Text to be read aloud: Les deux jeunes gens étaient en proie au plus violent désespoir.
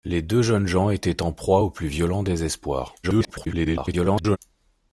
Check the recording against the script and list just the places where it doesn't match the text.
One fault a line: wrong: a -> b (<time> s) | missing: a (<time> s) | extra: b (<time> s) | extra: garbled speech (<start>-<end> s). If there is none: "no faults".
extra: garbled speech (3.0-4.4 s)